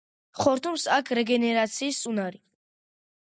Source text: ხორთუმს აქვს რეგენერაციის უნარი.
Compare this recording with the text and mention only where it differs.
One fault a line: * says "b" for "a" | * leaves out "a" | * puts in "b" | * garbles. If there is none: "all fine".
all fine